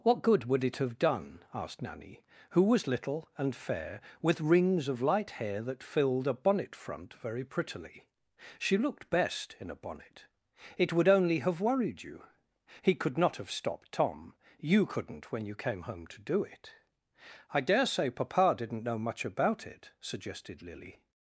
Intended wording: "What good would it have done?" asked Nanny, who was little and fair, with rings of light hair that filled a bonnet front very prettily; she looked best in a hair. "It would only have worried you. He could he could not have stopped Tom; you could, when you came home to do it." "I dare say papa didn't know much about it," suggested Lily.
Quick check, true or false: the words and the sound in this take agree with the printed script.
false